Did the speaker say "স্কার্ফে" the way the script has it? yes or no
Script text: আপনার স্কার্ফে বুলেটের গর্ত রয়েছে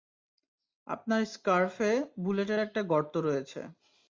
yes